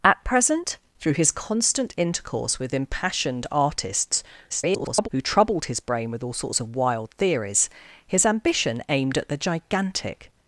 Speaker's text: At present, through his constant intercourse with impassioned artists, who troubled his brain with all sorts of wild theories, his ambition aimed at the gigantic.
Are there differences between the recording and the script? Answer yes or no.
yes